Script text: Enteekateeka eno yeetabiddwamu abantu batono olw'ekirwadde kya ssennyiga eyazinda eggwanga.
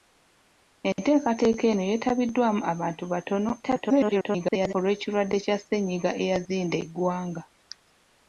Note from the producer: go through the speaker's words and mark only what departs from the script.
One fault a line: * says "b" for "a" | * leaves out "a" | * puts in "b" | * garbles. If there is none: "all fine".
* garbles